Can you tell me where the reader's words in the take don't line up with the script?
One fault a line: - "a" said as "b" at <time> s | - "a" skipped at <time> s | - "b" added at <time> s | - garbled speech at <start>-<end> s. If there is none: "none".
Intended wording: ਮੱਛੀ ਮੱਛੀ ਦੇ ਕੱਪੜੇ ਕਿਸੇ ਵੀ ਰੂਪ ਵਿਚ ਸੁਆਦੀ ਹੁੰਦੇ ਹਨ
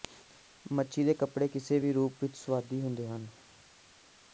- "ਮੱਛੀ" skipped at 1.0 s